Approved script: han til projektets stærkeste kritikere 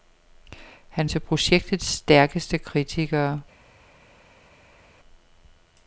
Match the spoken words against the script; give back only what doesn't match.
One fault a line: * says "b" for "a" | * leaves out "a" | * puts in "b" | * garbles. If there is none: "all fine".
all fine